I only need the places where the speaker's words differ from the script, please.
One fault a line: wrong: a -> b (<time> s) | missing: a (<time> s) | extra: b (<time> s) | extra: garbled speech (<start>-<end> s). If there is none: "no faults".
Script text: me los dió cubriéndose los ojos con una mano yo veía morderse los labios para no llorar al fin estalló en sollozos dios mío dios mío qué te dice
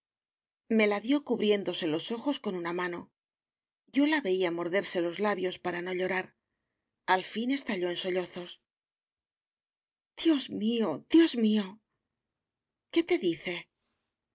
wrong: los -> la (0.9 s)
extra: la (4.1 s)